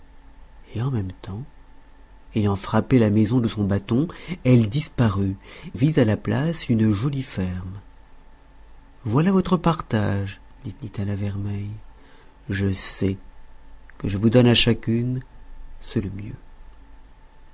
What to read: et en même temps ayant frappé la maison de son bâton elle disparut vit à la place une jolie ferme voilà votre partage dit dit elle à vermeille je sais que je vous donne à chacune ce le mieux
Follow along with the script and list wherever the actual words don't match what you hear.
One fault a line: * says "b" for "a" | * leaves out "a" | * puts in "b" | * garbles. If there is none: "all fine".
all fine